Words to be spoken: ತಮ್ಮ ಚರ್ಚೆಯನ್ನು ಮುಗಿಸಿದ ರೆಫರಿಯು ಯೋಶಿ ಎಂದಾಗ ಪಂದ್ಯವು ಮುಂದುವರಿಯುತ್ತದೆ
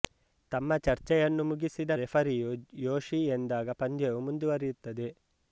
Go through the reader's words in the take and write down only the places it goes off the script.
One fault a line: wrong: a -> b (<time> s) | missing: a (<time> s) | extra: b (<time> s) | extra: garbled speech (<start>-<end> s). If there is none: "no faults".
no faults